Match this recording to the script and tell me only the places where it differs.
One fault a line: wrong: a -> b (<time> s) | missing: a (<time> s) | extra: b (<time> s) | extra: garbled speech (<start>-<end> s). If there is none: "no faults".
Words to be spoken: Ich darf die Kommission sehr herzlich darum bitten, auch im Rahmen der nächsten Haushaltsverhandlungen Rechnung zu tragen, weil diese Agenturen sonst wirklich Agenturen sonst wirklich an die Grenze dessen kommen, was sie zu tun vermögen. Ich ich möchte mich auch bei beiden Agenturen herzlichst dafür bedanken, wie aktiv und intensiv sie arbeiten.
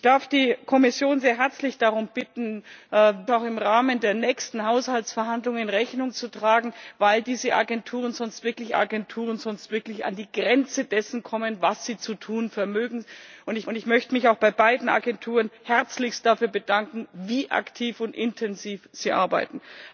no faults